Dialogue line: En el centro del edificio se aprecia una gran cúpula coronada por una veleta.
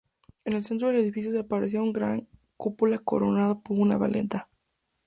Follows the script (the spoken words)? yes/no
yes